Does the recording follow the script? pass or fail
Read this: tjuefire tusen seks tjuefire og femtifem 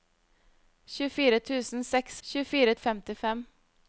pass